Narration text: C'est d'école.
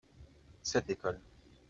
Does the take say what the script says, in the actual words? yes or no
yes